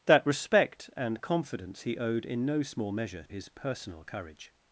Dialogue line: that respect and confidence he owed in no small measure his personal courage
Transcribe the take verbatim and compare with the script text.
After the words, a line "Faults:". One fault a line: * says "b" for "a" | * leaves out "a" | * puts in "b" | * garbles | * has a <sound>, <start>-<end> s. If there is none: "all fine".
that respect and confidence he owed in no small measure his personal courage
Faults:
all fine